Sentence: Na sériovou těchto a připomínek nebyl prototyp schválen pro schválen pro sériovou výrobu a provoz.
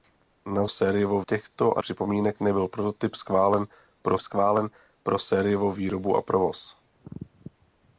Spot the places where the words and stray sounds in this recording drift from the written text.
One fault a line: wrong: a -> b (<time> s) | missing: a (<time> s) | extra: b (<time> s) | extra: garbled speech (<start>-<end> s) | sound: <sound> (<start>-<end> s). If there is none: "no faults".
no faults